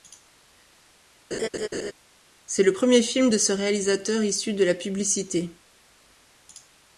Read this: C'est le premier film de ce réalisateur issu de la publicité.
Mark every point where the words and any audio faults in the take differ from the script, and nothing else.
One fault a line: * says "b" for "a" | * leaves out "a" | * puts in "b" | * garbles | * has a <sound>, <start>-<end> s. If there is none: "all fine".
* has a laugh, 1.3-1.9 s